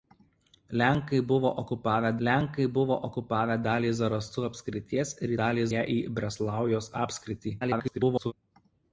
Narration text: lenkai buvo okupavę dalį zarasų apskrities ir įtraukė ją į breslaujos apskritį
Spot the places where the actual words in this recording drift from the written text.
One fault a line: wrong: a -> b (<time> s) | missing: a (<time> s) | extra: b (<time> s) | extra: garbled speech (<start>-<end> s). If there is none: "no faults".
extra: lenkai buvo okupavę (2.3 s)
wrong: įtraukė -> dalį (5.4 s)
extra: garbled speech (7.6-8.3 s)